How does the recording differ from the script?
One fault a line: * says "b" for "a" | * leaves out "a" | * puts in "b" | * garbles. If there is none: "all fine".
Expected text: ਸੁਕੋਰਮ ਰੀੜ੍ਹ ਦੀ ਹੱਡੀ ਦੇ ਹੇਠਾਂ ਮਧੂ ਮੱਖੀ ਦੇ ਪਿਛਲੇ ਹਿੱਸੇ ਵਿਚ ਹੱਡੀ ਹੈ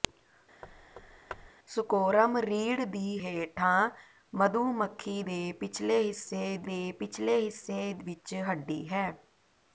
* leaves out "ਹੱਡੀ ਦੇ"
* puts in "ਦੇ ਪਿਛਲੇ ਹਿੱਸੇ"